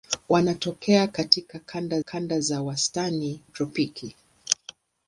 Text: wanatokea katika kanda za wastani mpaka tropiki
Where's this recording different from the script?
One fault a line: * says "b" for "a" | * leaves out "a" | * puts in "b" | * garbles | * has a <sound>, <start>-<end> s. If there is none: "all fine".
* puts in "kanda"
* leaves out "mpaka"